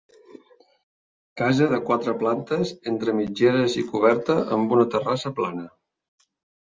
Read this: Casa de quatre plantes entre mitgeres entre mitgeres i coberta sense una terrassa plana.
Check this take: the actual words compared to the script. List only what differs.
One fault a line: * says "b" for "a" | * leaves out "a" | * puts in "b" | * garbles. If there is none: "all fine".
* leaves out "entre mitgeres"
* says "amb" for "sense"